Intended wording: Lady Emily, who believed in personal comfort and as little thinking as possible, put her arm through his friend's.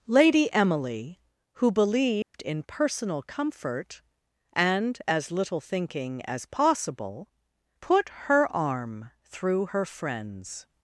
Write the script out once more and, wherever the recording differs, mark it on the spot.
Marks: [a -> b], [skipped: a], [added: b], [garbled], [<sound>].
Lady Emily, who believed [dropout] in personal comfort and as little thinking as possible, put her arm through [his -> her] friend's.